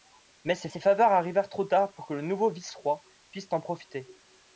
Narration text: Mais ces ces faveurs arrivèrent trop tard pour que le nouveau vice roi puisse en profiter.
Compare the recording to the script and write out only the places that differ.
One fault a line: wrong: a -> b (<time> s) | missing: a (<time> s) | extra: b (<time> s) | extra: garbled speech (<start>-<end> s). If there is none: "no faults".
no faults